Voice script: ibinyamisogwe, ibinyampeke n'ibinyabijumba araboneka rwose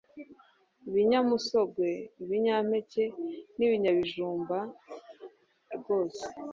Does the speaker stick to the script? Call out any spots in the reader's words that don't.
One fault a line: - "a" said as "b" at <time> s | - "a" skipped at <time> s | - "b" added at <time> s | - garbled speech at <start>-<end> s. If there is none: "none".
- "araboneka" skipped at 4.6 s